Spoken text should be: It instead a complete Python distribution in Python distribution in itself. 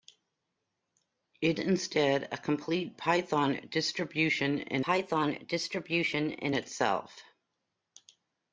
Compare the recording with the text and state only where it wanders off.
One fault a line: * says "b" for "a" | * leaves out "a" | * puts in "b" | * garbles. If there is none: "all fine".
all fine